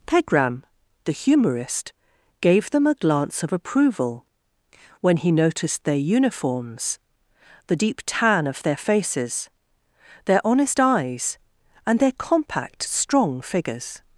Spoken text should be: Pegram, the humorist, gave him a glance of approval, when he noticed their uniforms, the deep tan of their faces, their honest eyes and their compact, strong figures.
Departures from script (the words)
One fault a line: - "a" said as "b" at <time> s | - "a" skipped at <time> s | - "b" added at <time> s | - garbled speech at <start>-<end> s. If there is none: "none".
- "him" said as "them" at 2.7 s